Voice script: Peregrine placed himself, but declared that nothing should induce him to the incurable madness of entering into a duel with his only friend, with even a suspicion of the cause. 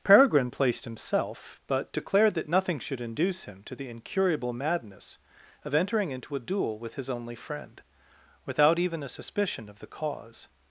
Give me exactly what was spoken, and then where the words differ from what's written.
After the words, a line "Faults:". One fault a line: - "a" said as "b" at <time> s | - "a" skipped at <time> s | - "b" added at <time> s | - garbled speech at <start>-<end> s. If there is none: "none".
Peregrine placed himself, but declared that nothing should induce him to the incurable madness of entering into a duel with his only friend, without even a suspicion of the cause.
Faults:
- "with" said as "without" at 8.4 s